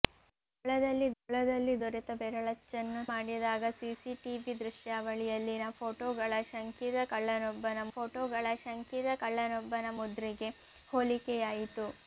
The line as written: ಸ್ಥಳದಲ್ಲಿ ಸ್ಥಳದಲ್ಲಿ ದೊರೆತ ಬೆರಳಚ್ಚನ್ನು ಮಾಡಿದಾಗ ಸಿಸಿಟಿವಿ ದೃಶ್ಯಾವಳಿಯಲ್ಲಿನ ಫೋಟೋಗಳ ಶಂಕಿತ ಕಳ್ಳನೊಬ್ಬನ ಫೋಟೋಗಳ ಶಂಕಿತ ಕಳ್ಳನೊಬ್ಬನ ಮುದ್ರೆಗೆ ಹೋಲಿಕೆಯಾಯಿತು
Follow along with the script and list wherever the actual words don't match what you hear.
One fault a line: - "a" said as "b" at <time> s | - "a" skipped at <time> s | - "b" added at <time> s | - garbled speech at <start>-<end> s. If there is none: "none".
none